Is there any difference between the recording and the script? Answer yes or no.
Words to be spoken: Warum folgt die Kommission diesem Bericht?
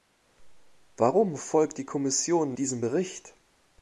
no